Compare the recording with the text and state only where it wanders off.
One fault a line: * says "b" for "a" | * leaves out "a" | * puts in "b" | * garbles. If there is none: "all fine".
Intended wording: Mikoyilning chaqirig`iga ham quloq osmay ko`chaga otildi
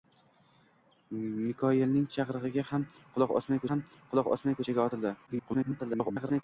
* puts in "ham quloq osmay"
* garbles